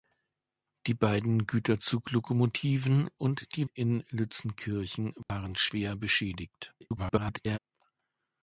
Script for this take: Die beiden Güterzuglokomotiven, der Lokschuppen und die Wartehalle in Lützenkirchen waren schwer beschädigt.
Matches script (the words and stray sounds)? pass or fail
fail